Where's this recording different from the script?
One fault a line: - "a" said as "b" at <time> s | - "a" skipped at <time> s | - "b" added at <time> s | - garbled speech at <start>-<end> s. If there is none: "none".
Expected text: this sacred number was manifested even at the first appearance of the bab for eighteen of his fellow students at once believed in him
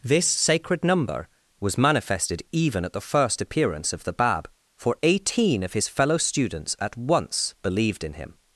none